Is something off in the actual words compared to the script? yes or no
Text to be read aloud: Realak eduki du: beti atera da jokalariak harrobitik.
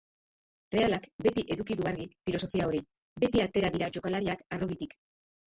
yes